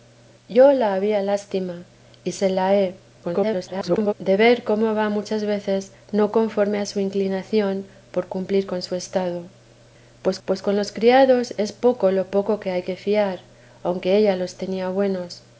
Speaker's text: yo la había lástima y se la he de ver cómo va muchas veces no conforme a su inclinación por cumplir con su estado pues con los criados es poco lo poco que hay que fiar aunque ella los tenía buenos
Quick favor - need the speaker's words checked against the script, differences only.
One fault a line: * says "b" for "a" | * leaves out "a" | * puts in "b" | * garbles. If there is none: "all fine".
* garbles
* puts in "pues"